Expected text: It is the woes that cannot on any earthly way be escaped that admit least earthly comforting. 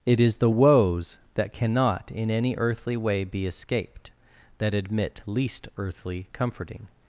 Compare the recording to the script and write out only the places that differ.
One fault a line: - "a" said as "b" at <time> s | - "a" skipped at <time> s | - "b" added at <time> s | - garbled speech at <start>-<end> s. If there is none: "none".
- "on" said as "in" at 2.1 s